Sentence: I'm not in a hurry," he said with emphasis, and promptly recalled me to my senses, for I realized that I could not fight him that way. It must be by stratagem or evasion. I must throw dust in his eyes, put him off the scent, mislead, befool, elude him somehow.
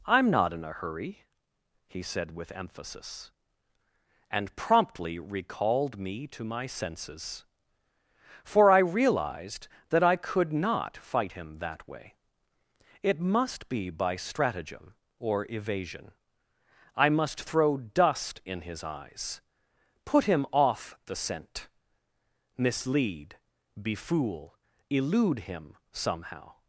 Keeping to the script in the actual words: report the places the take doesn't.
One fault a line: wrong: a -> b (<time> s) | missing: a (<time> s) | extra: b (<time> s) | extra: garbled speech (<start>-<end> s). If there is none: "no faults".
no faults